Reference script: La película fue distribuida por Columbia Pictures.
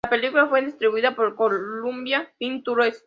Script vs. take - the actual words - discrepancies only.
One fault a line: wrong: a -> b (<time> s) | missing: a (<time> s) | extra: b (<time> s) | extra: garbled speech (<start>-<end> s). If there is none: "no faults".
no faults